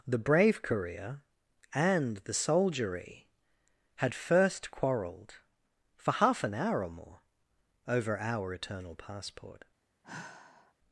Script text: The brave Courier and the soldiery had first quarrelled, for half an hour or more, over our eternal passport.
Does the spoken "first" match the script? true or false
true